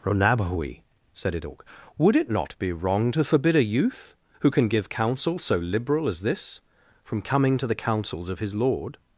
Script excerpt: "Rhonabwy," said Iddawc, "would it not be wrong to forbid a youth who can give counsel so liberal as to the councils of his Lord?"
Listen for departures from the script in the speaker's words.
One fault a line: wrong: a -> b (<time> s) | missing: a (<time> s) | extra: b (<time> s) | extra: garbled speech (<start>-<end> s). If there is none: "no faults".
extra: this from coming (6.2 s)